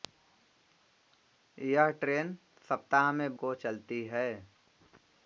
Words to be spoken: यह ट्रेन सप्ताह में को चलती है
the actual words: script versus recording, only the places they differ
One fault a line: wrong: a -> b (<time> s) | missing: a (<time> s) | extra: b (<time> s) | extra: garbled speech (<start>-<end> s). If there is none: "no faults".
no faults